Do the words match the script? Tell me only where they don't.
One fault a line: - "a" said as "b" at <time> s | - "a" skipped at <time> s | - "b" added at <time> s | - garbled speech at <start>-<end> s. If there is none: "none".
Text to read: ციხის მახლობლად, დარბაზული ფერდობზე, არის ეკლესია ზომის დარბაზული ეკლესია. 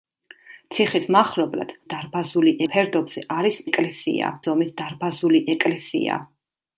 none